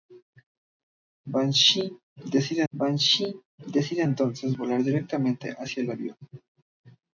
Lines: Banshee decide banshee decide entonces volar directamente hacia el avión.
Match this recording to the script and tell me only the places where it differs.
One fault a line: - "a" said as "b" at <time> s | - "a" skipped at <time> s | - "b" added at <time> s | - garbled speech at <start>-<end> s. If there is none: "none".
none